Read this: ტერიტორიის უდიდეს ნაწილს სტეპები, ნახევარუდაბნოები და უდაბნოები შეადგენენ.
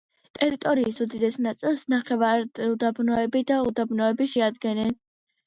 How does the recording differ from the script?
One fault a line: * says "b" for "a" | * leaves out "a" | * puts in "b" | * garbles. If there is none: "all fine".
* leaves out "სტეპები"